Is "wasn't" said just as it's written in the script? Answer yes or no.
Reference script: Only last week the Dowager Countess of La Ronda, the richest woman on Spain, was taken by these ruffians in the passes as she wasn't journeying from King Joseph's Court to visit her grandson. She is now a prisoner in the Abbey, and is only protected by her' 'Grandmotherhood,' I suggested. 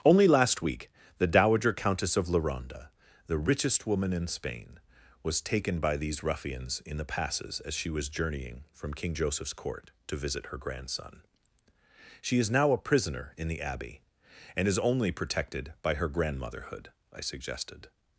no